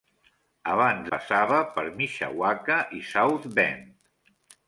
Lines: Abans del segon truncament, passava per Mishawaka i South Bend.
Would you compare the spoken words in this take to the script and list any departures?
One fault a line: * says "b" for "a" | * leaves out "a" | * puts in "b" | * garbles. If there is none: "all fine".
* leaves out "del segon truncament"